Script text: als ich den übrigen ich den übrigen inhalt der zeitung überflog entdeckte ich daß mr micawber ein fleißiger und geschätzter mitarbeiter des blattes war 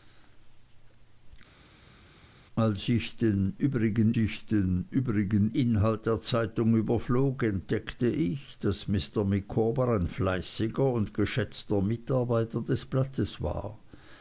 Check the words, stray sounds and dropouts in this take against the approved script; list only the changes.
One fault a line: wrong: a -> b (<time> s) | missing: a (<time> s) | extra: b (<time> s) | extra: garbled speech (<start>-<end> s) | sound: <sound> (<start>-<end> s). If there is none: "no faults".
no faults